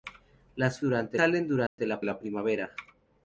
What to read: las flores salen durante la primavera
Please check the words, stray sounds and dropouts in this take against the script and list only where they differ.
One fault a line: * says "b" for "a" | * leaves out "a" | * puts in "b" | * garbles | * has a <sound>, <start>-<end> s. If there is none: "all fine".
* says "durante" for "flores"
* has a dropout, 1.7-1.8 s
* puts in "la"